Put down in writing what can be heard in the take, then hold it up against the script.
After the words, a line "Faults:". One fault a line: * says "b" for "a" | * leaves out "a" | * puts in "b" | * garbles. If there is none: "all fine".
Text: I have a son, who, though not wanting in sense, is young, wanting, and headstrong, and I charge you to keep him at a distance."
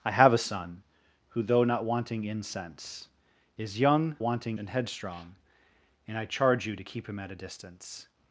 I have a son, who, though not wanting in sense, is young, wanting, and headstrong, and I charge you to keep him at a distance."
Faults:
all fine